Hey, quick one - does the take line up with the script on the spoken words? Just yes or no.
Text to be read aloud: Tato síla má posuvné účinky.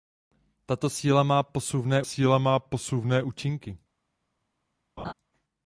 no